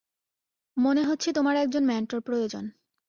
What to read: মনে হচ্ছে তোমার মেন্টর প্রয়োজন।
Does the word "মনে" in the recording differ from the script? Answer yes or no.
no